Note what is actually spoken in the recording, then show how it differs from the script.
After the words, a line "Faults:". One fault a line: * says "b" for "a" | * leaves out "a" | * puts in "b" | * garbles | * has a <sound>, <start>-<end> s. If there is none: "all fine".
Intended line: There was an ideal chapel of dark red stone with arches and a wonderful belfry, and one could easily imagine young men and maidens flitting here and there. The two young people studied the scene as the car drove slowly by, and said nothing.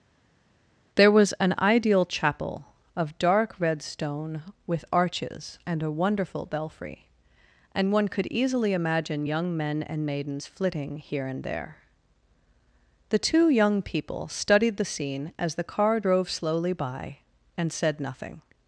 There was an ideal chapel of dark red stone with arches and a wonderful belfry, and one could easily imagine young men and maidens flitting here and there. The two young people studied the scene as the car drove slowly by, and said nothing.
Faults:
all fine